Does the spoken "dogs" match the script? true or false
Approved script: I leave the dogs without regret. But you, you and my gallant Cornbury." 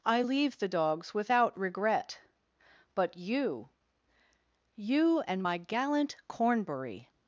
true